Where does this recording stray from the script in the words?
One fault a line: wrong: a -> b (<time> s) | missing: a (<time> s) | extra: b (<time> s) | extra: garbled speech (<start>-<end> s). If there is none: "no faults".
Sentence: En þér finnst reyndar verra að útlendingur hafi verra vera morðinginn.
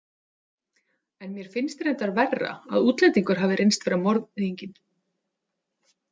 wrong: þér -> mér (1.3 s)
wrong: verra -> reynst (3.6 s)